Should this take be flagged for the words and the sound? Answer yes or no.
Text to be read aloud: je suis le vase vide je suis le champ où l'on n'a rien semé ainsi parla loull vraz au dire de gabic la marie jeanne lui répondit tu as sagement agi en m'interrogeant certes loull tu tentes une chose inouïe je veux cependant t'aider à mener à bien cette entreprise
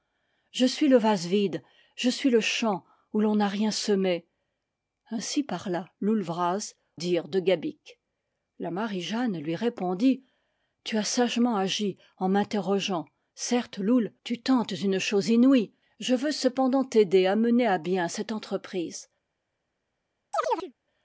yes